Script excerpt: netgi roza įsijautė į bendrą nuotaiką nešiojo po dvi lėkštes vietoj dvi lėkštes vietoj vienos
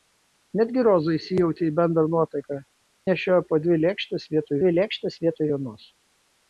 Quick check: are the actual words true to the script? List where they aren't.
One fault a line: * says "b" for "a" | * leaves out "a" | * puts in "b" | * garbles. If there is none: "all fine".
all fine